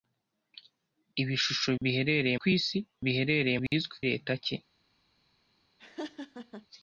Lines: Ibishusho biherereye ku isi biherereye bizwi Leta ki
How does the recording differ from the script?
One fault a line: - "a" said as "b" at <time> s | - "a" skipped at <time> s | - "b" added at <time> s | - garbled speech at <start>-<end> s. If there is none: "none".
none